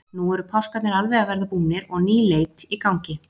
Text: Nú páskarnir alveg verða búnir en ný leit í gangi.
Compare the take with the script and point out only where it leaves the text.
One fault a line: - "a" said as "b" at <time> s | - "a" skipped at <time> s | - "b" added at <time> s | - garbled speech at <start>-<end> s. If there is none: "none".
- "eru" added at 0.3 s
- "að" added at 1.2 s
- "en" said as "og" at 1.9 s